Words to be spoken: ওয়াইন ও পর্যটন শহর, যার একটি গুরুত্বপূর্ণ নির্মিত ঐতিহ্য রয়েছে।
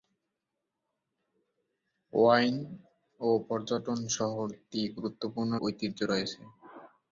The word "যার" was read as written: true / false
false